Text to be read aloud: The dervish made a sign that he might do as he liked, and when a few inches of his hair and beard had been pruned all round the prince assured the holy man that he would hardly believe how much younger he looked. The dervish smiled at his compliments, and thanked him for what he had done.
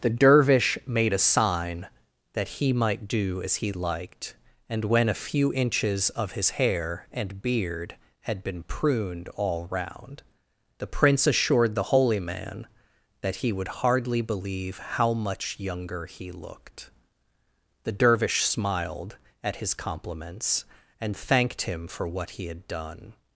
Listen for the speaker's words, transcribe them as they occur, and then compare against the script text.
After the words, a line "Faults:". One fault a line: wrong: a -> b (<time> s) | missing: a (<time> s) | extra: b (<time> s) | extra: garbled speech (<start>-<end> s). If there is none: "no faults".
The dervish made a sign that he might do as he liked, and when a few inches of his hair and beard had been pruned all round the prince assured the holy man that he would hardly believe how much younger he looked. The dervish smiled at his compliments, and thanked him for what he had done.
Faults:
no faults